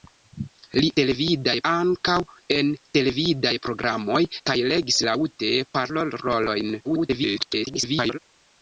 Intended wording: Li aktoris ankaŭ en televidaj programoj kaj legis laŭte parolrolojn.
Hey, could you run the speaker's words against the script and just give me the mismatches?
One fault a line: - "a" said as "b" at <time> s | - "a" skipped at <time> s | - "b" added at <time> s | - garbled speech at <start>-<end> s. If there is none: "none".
- "aktoris" said as "televidaj" at 1.0 s
- garbled speech at 6.8-8.2 s